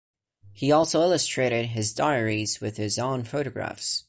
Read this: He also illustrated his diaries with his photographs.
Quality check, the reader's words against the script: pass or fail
fail